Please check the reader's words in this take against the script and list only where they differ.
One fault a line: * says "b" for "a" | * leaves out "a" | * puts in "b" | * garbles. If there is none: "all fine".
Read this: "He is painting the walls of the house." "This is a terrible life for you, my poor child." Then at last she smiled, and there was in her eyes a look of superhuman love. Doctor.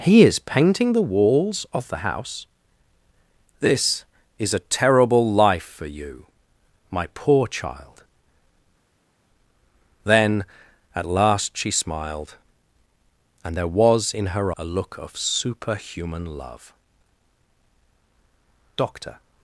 * leaves out "eyes"